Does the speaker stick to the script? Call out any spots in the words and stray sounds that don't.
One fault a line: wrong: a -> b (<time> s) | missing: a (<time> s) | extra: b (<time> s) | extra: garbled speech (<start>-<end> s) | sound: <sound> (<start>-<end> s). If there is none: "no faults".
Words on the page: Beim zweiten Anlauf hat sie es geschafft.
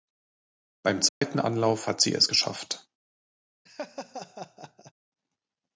sound: dropout (1.1-1.2 s)
sound: laugh (3.7-4.9 s)